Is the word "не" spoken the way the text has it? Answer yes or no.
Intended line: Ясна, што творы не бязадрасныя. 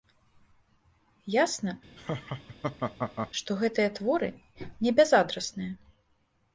yes